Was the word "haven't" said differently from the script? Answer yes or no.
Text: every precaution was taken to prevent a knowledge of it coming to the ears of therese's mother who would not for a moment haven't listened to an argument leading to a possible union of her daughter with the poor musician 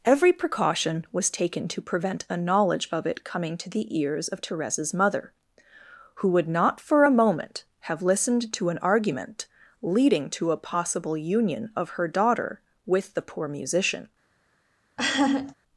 yes